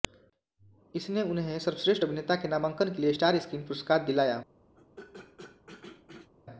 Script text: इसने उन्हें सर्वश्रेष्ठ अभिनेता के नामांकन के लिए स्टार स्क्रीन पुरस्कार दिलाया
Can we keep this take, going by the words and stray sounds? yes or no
no